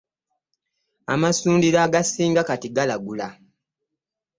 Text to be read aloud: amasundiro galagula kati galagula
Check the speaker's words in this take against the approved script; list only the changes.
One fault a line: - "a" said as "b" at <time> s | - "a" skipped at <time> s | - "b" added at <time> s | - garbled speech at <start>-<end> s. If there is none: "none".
- "galagula" said as "agasinga" at 1.9 s